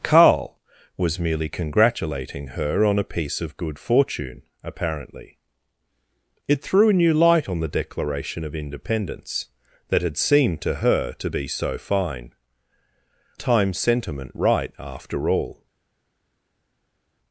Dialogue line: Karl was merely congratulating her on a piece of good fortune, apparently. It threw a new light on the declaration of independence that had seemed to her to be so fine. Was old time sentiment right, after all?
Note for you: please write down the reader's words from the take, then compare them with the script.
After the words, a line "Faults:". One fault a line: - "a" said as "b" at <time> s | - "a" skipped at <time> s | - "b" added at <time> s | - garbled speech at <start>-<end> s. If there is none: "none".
Karl was merely congratulating her on a piece of good fortune, apparently. It threw a new light on the declaration of independence that had seemed to her to be so fine. Time sentiment right, after all?
Faults:
- "Was old" skipped at 12.3 s